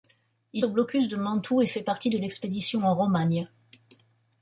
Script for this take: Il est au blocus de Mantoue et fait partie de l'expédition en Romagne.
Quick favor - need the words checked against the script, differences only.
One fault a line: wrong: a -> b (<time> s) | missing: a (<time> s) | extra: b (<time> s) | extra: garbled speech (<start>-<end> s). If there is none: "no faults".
missing: est (0.7 s)